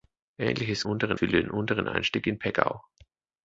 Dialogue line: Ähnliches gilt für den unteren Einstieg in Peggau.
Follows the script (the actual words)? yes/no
no